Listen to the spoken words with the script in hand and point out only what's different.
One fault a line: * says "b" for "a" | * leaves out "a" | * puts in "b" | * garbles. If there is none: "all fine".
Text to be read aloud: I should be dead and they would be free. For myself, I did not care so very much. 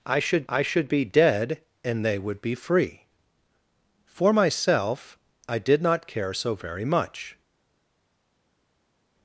* puts in "I should"